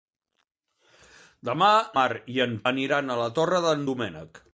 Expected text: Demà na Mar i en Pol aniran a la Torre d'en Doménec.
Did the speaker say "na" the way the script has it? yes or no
no